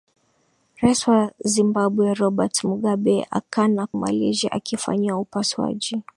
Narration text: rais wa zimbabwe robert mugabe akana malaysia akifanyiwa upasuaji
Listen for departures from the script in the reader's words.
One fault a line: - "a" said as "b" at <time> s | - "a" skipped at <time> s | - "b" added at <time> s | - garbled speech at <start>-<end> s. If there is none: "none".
none